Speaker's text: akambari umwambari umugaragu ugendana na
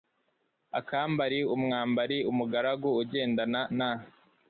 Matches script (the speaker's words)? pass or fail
pass